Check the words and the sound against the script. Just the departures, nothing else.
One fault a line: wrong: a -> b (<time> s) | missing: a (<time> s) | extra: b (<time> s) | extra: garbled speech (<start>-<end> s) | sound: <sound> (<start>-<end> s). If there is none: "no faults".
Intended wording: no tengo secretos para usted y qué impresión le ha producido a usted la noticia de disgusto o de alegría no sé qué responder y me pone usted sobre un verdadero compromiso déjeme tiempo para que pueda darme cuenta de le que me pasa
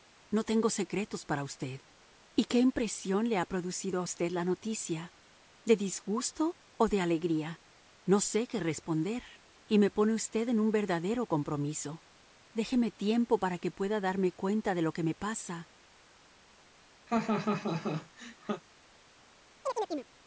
wrong: sobre -> en (10.5 s)
wrong: le -> lo (14.8 s)
sound: laugh (17.1-18.6 s)
sound: chirp (19.6-20.1 s)